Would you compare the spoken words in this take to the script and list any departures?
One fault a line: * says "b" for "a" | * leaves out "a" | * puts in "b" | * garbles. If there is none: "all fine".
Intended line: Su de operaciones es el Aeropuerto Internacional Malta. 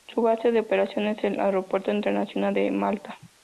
* puts in "base"
* puts in "de"